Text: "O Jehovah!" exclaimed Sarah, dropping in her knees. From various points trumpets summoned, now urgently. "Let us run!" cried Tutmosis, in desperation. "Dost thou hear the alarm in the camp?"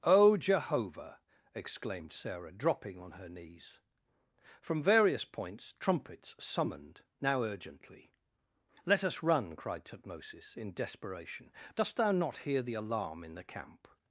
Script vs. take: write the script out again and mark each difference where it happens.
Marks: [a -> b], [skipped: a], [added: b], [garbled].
"O Jehovah!" exclaimed Sarah, dropping [in -> on] her knees. From various points trumpets summoned, now urgently. "Let us run!" cried Tutmosis, in desperation. "Dost thou [added: not] hear the alarm in the camp?"